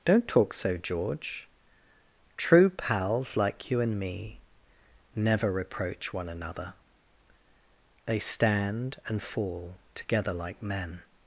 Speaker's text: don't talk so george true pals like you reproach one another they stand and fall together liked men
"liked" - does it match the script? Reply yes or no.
no